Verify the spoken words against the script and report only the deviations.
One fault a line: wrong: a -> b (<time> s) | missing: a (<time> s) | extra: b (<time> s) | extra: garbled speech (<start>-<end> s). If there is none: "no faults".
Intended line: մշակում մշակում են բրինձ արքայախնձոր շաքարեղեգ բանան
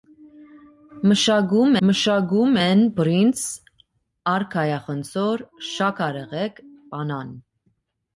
no faults